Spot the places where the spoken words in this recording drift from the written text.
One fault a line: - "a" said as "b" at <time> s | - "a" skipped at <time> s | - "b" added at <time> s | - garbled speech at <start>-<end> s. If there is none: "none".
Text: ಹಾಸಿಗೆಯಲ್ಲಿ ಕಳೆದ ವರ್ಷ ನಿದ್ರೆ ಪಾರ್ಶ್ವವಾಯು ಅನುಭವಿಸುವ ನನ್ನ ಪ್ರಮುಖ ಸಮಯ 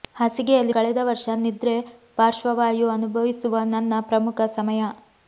none